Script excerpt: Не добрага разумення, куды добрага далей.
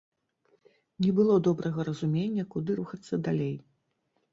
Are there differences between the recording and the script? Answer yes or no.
yes